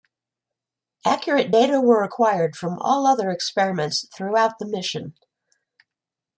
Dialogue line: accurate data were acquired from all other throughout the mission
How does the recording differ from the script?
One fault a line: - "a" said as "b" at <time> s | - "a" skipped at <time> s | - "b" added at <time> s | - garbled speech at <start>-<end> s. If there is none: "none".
- "experiments" added at 3.3 s